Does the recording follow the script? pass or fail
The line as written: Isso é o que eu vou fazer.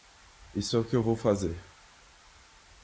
pass